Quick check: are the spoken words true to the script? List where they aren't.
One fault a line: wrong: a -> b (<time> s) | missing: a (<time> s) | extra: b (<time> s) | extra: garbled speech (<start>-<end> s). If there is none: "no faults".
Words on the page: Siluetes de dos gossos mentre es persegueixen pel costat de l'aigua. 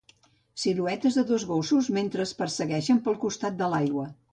no faults